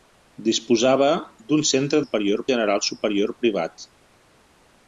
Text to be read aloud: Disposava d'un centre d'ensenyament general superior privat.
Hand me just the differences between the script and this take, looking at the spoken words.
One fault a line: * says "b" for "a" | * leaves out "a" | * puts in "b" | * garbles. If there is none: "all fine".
* says "superior" for "d'ensenyament"